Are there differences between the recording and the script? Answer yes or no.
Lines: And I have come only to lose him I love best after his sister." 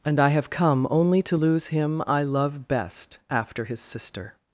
no